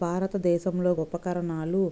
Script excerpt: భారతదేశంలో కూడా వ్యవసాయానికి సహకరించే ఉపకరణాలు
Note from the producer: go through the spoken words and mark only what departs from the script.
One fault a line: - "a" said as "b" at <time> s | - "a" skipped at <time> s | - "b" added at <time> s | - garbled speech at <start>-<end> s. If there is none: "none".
- "కూడా వ్యవసాయానికి సహకరించే" skipped at 0.9 s